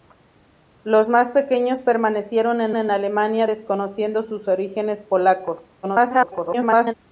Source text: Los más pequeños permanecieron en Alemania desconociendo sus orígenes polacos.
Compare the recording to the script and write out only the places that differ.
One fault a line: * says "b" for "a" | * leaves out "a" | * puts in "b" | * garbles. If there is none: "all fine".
* puts in "en"
* garbles